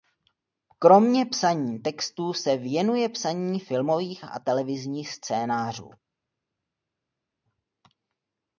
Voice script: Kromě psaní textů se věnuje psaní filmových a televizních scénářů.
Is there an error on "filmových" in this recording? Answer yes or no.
no